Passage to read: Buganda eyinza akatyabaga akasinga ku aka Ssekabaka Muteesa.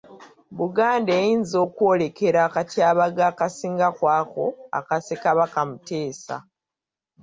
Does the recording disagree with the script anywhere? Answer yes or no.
yes